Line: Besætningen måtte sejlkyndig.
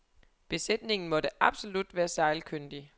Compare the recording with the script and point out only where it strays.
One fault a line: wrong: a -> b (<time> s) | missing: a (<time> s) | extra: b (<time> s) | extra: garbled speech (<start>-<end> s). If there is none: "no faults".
extra: absolut være (1.4 s)